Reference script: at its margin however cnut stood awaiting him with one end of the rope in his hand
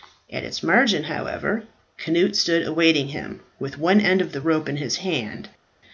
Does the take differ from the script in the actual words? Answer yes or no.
no